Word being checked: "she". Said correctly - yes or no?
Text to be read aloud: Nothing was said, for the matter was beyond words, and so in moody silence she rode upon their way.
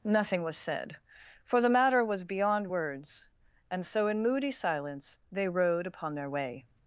no